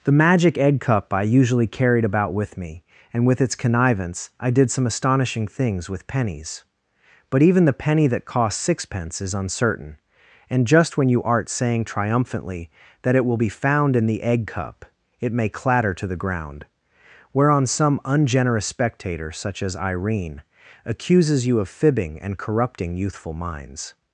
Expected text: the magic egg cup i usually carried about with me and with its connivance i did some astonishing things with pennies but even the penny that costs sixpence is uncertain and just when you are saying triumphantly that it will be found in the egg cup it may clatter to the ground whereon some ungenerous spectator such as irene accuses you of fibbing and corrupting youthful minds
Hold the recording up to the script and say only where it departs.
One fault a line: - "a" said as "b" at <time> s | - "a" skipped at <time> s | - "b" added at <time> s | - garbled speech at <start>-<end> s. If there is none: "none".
- "are" said as "art" at 11.2 s